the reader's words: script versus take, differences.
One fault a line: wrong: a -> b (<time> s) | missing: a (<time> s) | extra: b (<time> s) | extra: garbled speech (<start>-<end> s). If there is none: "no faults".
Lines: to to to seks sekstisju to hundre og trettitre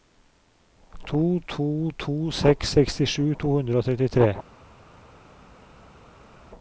no faults